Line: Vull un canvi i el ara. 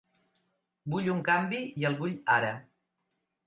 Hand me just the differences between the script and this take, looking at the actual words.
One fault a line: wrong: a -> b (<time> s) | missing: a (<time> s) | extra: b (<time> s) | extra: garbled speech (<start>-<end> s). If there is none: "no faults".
extra: vull (2.0 s)